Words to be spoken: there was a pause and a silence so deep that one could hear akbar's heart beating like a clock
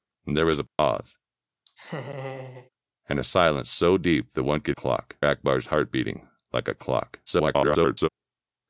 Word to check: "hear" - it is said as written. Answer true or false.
false